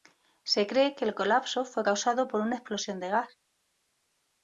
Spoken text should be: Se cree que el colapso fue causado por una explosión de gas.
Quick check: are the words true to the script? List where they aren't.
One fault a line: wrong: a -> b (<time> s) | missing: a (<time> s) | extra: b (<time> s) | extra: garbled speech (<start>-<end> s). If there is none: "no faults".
no faults